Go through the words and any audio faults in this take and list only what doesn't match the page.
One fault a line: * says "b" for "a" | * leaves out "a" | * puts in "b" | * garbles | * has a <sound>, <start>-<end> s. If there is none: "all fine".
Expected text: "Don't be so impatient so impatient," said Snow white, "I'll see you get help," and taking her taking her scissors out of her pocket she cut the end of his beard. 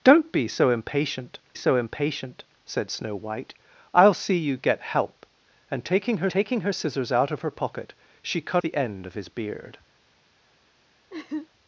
* has a laugh, 11.1-11.5 s